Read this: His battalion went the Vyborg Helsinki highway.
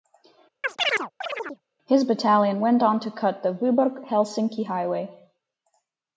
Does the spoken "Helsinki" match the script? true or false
true